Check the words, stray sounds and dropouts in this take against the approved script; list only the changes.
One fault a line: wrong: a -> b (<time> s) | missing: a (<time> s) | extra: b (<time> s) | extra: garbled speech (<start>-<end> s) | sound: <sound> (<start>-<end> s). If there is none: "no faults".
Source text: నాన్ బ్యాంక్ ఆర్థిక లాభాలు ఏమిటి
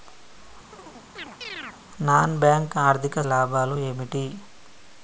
sound: chirp (0.7-1.8 s)